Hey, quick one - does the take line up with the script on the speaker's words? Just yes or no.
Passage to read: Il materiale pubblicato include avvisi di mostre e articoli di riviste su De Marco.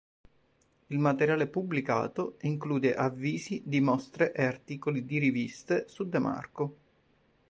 yes